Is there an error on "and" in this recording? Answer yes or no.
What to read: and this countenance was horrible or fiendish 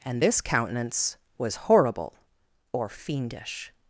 no